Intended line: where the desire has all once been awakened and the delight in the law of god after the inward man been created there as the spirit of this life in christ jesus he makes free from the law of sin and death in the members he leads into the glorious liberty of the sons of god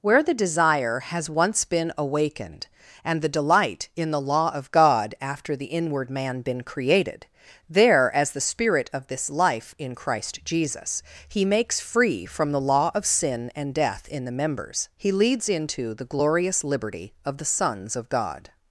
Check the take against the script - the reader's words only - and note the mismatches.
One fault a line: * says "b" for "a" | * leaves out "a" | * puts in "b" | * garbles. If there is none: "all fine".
* leaves out "all"